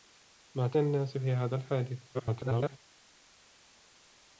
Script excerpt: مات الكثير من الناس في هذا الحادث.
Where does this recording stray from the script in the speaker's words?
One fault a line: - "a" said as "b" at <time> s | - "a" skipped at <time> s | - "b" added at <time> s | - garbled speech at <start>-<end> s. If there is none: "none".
- "الكثير من" skipped at 0.8 s
- garbled speech at 2.1-2.8 s